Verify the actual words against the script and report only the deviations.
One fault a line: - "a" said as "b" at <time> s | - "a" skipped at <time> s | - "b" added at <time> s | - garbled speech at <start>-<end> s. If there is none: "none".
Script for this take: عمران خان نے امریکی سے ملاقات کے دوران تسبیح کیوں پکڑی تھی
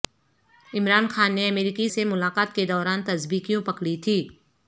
none